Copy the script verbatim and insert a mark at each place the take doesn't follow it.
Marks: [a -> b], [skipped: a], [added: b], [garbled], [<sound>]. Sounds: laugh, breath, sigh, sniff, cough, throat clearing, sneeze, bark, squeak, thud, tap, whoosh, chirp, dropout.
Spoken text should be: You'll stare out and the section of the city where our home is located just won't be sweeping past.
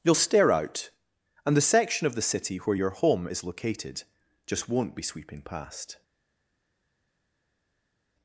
You'll stare out and the section of the city where [our -> your] home is located just won't be sweeping past.